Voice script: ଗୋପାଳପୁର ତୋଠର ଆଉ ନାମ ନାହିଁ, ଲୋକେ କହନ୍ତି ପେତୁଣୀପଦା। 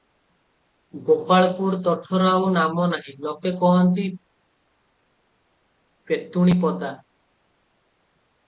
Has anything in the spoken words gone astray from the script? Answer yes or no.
no